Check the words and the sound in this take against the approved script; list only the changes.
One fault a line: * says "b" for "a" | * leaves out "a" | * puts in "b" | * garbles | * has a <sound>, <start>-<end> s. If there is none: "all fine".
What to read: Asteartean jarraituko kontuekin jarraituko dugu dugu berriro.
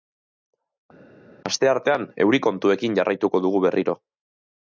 * says "euri" for "jarraituko"
* leaves out "dugu"